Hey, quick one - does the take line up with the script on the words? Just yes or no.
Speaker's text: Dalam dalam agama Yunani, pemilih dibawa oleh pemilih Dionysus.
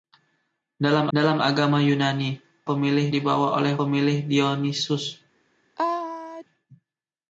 yes